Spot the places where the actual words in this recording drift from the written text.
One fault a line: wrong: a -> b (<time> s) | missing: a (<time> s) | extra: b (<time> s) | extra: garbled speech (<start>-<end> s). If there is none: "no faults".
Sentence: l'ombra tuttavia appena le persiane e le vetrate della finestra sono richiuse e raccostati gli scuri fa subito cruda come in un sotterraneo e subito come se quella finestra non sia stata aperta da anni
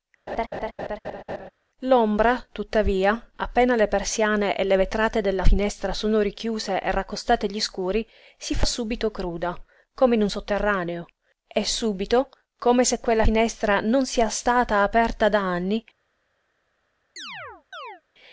extra: si (8.4 s)